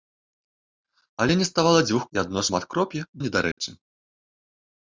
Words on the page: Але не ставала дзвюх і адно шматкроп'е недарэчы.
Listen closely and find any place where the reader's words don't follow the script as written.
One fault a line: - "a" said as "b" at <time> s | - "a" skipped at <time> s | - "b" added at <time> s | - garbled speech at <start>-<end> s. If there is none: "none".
none